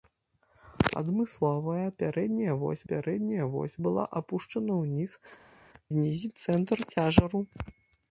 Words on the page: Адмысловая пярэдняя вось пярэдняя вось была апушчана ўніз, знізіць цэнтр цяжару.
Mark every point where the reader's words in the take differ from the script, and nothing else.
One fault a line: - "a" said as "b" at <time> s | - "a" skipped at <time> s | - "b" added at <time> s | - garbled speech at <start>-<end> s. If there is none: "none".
none